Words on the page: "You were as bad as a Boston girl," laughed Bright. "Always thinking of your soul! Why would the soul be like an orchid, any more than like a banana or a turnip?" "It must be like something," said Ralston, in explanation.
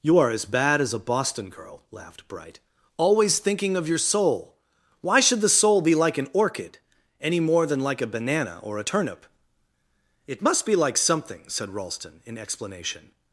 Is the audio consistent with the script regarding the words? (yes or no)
no